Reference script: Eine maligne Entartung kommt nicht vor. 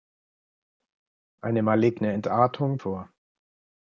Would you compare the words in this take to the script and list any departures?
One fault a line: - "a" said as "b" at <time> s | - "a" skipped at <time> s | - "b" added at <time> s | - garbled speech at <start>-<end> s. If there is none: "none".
- "kommt nicht" skipped at 2.8 s